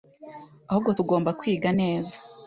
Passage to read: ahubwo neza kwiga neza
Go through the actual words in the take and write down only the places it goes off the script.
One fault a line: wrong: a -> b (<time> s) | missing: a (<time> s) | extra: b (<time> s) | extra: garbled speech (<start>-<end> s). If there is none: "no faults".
wrong: neza -> tugomba (1.0 s)